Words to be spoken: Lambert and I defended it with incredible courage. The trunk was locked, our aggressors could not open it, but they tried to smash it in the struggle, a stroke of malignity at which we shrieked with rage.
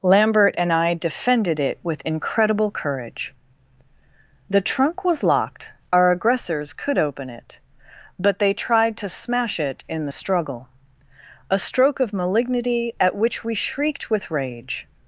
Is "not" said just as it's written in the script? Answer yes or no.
no